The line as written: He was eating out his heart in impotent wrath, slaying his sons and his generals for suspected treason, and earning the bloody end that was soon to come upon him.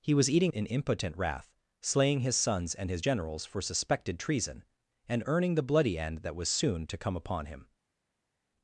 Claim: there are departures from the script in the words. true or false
true